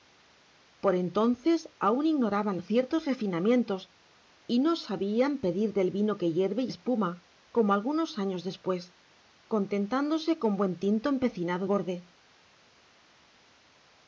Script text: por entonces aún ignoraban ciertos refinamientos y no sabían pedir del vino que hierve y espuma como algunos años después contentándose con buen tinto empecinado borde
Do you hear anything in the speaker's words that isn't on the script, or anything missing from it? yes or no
no